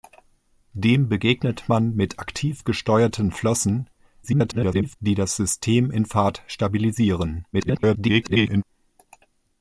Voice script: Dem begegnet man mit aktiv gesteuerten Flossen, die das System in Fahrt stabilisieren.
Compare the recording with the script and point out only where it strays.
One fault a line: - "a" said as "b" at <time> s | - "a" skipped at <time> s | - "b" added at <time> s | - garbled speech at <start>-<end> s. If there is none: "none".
- garbled speech at 4.2-5.0 s
- garbled speech at 7.5-8.6 s